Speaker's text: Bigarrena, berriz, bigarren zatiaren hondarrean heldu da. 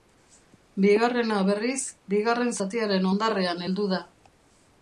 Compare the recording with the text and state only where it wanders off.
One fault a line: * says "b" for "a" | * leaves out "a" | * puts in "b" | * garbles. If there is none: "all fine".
all fine